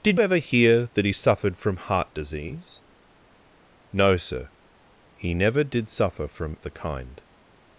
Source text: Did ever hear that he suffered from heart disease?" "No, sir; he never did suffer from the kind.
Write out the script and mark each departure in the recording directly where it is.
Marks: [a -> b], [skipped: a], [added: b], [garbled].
Did ever hear that he suffered from heart disease?" "No, sir; he never did suffer from the kind.